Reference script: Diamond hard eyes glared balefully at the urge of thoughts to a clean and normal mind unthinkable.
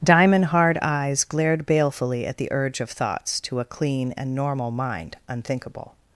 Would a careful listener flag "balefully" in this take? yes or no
no